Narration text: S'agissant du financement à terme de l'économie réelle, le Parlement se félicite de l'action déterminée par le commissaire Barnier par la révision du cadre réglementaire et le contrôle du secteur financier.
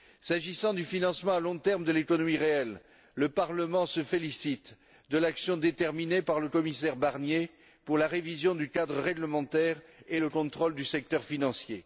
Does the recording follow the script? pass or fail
fail